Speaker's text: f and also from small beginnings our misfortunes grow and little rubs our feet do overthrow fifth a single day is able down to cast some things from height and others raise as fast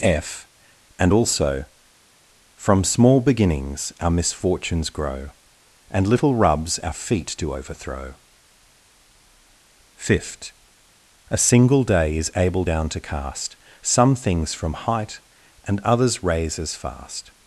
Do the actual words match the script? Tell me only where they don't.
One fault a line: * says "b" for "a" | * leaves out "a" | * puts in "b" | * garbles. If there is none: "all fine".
all fine